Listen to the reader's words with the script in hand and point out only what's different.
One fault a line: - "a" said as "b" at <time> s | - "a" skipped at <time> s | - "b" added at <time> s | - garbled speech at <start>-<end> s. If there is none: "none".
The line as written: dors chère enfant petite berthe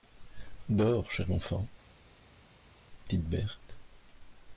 none